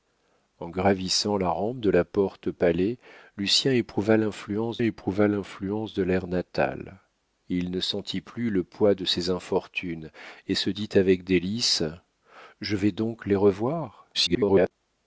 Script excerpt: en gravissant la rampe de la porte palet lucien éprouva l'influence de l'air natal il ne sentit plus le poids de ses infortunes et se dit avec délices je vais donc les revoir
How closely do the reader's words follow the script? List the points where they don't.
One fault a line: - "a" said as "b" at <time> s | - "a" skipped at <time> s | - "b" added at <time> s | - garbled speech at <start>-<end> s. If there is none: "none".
- "éprouva l'influence" added at 4.8 s
- garbled speech at 14.1-14.7 s